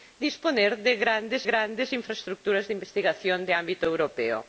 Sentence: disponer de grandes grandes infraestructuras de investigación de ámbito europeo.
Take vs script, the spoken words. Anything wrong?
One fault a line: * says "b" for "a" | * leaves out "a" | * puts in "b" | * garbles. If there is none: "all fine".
all fine